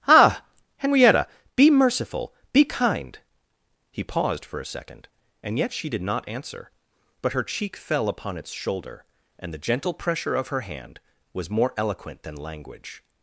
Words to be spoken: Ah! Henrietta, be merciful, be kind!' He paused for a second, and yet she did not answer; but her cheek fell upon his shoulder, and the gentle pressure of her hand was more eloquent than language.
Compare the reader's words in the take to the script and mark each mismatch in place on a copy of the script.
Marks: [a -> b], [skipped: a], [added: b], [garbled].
Ah! Henrietta, be merciful, be kind!' He paused for a second, and yet she did not answer; but her cheek fell upon [his -> its] shoulder, and the gentle pressure of her hand was more eloquent than language.